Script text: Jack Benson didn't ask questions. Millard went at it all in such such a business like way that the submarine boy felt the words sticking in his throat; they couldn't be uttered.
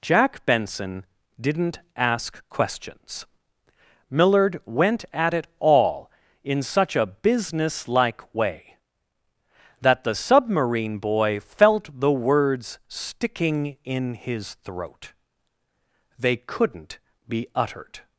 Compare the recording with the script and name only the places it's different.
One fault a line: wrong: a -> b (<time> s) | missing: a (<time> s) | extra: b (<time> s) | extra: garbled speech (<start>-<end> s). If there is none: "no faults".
missing: such (7.0 s)